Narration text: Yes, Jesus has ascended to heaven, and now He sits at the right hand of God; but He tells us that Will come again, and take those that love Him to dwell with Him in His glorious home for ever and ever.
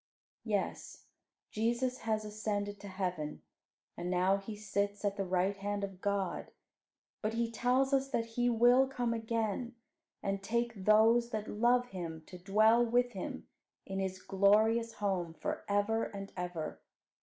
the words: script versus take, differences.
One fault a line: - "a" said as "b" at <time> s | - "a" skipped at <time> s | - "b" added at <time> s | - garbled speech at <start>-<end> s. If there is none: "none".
- "He" added at 8.3 s